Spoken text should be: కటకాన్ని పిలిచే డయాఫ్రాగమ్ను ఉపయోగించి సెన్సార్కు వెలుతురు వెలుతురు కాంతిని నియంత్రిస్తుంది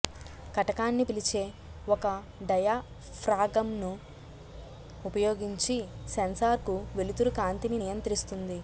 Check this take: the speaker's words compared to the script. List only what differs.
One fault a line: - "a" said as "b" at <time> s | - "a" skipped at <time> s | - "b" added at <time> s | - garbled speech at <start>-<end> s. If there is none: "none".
- "ఒక" added at 1.9 s
- "వెలుతురు" skipped at 7.3 s